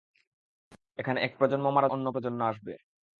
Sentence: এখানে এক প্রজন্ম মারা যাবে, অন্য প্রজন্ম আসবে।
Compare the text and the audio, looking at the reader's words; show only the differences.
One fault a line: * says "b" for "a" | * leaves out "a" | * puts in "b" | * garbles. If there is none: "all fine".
* leaves out "যাবে"